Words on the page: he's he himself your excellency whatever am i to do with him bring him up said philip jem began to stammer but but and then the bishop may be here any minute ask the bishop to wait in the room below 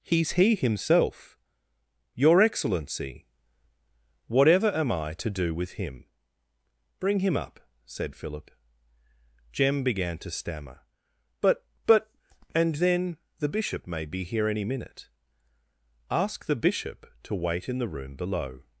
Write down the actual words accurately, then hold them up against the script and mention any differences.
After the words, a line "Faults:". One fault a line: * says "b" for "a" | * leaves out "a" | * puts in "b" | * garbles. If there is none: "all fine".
he's he himself your excellency whatever am i to do with him bring him up said philip jem began to stammer but but and then the bishop may be here any minute ask the bishop to wait in the room below
Faults:
all fine